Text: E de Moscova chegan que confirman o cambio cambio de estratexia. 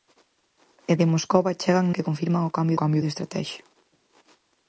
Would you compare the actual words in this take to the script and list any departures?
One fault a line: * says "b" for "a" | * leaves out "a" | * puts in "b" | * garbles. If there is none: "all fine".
all fine